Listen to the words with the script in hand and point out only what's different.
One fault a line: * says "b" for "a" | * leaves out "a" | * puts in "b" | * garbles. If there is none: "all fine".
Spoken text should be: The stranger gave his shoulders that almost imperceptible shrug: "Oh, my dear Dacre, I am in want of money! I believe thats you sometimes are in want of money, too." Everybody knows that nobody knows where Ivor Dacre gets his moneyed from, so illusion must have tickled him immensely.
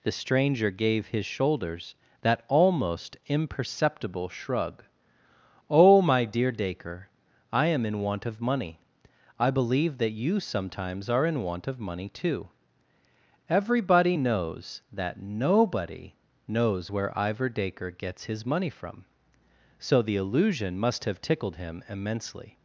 * says "that" for "thats"
* says "money" for "moneyed"
* puts in "the"